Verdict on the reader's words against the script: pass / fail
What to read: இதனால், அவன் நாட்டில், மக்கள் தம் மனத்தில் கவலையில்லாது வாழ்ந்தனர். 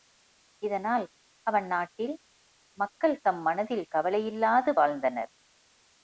pass